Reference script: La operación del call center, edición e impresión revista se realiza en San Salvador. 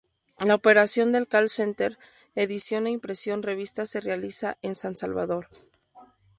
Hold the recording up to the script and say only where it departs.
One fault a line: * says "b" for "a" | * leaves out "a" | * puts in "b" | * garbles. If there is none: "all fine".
all fine